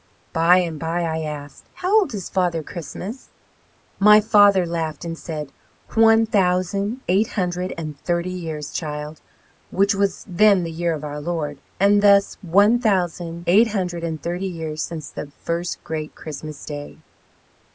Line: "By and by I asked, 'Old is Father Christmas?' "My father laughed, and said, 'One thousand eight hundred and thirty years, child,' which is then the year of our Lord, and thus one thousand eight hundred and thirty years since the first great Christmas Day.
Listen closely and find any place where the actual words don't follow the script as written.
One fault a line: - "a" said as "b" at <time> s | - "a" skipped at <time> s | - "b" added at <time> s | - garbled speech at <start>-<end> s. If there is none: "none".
- "How" added at 1.7 s
- "is" said as "was" at 9.9 s